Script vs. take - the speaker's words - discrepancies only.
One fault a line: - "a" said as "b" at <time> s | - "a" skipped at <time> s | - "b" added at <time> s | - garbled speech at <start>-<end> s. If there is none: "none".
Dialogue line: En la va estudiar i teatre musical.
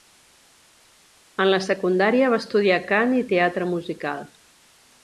- "secundària" added at 1.7 s
- "cant" added at 3.0 s